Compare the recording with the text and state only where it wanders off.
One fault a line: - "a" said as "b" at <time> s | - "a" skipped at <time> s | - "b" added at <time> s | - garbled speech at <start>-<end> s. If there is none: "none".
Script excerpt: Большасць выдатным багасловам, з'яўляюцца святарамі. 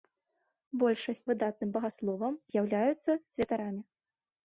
none